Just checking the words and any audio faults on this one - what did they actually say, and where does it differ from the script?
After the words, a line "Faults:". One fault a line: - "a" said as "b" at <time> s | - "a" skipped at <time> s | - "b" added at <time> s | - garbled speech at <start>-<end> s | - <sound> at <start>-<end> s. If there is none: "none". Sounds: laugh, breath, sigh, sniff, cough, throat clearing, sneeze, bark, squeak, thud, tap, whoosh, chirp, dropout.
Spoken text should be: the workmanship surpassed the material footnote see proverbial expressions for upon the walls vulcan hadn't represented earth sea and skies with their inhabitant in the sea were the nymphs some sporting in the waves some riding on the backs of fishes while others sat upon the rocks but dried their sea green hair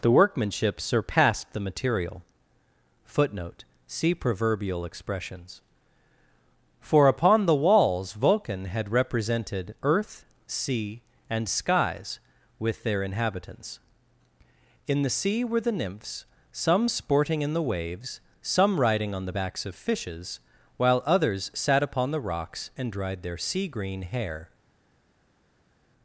the workmanship surpassed the material footnote see proverbial expressions for upon the walls vulcan had represented earth sea and skies with their inhabitants in the sea were the nymphs some sporting in the waves some riding on the backs of fishes while others sat upon the rocks and dried their sea green hair
Faults:
- "hadn't" said as "had" at 8.7 s
- "inhabitant" said as "inhabitants" at 13.0 s
- "but" said as "and" at 22.8 s